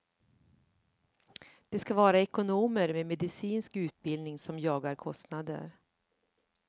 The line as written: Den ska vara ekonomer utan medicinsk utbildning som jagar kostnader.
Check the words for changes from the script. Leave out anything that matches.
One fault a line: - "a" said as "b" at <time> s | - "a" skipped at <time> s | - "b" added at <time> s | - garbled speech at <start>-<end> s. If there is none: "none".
- "Den" said as "Det" at 1.7 s
- "utan" said as "med" at 2.9 s